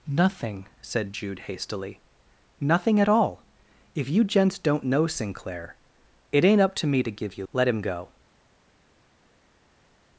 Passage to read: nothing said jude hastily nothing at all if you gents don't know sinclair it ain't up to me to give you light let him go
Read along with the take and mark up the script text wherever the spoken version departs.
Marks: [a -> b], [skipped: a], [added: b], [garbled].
nothing said jude hastily nothing at all if you gents don't know sinclair it ain't up to me to give you [skipped: light] let him go